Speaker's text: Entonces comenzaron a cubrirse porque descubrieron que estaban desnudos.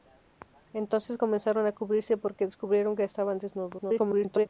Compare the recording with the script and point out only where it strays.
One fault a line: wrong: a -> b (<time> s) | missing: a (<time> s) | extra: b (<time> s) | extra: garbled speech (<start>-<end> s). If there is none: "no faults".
extra: garbled speech (3.8-4.5 s)